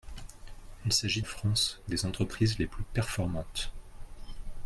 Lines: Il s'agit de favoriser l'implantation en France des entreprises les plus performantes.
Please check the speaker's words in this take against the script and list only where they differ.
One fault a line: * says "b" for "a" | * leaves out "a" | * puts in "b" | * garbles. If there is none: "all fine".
* leaves out "de favoriser l'implantation"